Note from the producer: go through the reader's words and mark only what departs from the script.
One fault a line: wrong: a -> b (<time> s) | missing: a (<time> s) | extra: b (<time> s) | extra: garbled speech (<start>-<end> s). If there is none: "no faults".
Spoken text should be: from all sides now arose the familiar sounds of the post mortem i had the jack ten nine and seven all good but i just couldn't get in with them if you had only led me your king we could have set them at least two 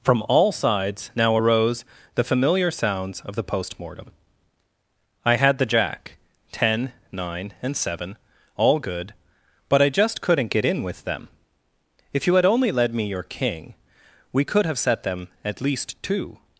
no faults